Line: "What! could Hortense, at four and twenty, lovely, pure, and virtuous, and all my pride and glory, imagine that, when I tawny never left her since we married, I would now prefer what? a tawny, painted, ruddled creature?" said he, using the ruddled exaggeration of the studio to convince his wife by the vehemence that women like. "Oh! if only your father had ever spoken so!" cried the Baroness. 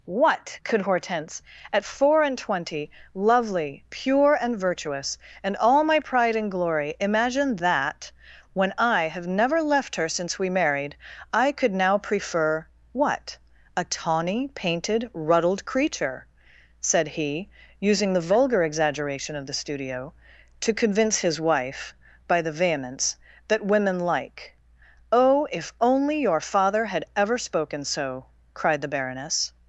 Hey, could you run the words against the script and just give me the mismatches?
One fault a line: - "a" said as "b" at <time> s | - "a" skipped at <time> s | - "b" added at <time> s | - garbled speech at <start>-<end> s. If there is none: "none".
- "tawny" said as "have" at 9.1 s
- "would" said as "could" at 11.5 s
- "ruddled" said as "vulgar" at 18.3 s